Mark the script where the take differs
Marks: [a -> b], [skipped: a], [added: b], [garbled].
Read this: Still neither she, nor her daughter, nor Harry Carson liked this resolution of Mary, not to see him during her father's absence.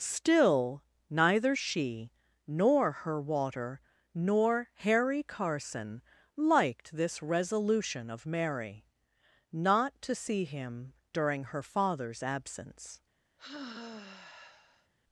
Still neither she, nor her [daughter, -> water] nor Harry Carson liked this resolution of Mary, not to see him during her father's absence.